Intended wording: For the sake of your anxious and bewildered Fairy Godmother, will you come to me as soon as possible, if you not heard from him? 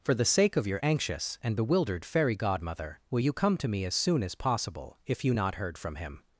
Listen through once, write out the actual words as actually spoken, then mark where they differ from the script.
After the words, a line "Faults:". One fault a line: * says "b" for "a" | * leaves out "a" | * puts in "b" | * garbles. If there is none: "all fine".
For the sake of your anxious and bewildered Fairy Godmother, will you come to me as soon as possible, if you not heard from him?
Faults:
all fine